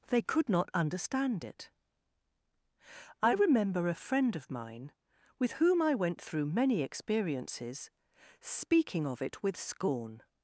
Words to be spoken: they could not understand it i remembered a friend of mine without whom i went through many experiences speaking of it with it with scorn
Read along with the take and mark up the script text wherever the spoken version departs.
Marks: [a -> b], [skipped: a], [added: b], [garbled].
they could not understand it i [remembered -> remember] a friend of mine [without -> with] whom i went through many experiences speaking of it with [skipped: it with] scorn